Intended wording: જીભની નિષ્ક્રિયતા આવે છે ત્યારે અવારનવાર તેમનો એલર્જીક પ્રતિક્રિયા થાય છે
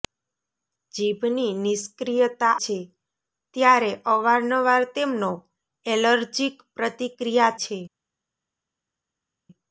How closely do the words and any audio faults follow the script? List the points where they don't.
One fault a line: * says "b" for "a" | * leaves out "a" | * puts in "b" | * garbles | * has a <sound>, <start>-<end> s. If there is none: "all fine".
* leaves out "આવે"
* leaves out "થાય"